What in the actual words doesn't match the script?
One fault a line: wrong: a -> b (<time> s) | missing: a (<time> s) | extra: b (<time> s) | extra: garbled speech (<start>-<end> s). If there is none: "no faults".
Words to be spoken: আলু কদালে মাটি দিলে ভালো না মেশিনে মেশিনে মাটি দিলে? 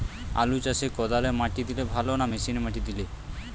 extra: চাষে (0.7 s)
missing: মেশিনে (2.6 s)